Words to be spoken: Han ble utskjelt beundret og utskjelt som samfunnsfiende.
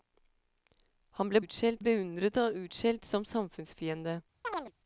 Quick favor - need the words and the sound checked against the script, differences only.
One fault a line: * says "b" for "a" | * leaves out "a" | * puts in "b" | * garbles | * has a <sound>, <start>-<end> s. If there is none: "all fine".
* has a chirp, 4.4-4.7 s